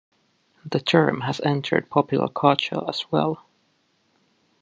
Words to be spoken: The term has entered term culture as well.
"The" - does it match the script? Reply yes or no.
yes